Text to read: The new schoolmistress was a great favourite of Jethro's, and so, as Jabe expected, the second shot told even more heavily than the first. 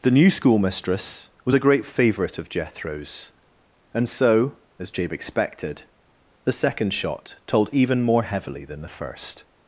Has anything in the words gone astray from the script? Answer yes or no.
no